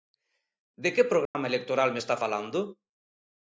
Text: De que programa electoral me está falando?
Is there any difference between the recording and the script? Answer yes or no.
no